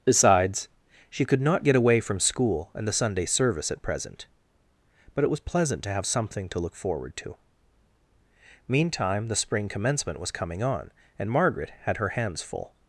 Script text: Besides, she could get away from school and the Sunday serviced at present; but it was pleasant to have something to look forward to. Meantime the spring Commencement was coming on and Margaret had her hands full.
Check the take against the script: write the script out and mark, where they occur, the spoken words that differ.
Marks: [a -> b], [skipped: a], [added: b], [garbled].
Besides, she could [added: not] get away from school and the Sunday [serviced -> service] at present; but it was pleasant to have something to look forward to. Meantime the spring Commencement was coming on and Margaret had her hands full.